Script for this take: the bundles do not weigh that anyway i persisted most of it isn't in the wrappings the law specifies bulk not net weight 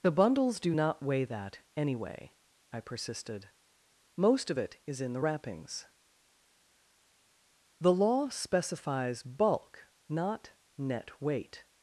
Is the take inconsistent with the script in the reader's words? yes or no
yes